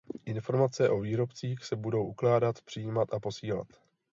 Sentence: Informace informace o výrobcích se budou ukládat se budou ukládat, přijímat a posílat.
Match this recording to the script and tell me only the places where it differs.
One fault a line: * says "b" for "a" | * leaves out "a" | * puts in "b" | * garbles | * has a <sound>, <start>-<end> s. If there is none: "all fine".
* leaves out "informace"
* leaves out "se budou ukládat"